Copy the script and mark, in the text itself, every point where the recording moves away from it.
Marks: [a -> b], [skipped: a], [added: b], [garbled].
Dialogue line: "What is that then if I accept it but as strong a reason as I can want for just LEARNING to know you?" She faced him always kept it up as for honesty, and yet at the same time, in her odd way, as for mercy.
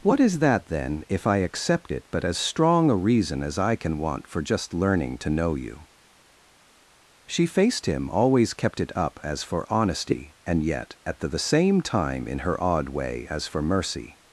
"What is that then if I accept it but as strong a reason as I can want for just LEARNING to know you?" She faced him always kept it up as for honesty, and yet at the [added: the] same time, in her odd way, as for mercy.